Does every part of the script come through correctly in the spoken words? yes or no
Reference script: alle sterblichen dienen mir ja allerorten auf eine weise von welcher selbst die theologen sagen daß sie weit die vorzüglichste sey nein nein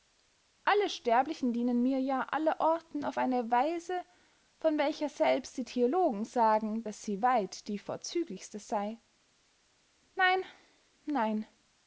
yes